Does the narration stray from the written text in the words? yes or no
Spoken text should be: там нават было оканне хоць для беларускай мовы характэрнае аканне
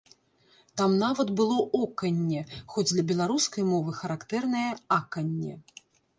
no